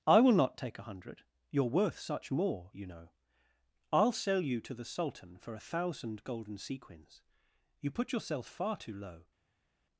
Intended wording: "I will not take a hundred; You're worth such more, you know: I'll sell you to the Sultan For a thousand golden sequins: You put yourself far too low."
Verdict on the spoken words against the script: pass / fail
pass